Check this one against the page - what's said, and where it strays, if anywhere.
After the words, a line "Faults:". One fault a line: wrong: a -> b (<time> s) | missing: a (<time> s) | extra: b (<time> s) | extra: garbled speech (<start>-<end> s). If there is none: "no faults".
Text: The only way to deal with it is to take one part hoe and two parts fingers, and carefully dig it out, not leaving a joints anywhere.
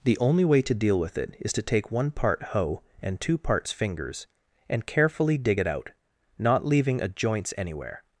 The only way to deal with it is to take one part hoe and two parts fingers, and carefully dig it out, not leaving a joints anywhere.
Faults:
no faults